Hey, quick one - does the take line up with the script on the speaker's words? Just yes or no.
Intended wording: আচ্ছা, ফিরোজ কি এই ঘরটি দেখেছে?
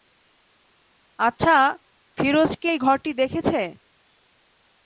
yes